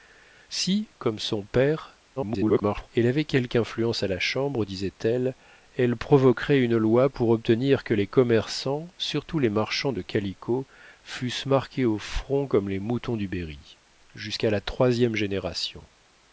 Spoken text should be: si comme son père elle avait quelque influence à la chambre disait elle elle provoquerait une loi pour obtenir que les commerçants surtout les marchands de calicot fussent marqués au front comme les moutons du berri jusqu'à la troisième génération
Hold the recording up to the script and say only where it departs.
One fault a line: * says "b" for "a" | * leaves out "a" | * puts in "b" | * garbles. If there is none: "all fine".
* garbles